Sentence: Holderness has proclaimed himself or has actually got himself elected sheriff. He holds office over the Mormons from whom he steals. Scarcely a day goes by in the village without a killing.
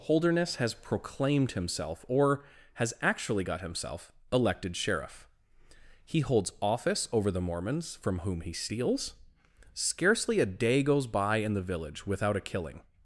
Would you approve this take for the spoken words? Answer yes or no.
yes